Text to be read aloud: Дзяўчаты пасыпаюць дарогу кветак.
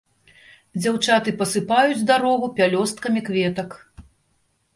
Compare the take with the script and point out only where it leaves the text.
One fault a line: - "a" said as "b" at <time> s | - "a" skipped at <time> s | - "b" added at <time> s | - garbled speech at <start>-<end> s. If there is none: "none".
- "пялёсткамі" added at 2.6 s